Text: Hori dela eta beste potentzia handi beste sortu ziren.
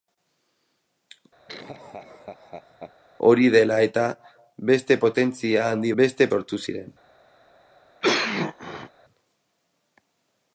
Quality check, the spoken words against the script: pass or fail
pass